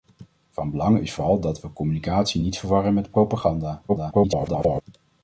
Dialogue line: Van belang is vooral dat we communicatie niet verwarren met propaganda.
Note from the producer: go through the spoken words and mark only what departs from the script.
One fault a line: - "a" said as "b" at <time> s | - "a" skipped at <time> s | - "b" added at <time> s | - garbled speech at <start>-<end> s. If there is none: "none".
- garbled speech at 3.9-4.8 s